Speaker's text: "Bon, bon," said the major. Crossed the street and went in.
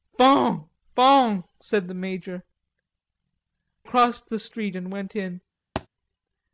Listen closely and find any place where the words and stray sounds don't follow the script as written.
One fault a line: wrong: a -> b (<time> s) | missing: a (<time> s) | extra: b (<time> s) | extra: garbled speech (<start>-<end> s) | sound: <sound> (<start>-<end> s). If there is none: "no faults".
sound: thud (5.8-5.9 s)